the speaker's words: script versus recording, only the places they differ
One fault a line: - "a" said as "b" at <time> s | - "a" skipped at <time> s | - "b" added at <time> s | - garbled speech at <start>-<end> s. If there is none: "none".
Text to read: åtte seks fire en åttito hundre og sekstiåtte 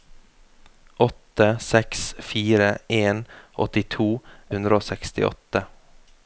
none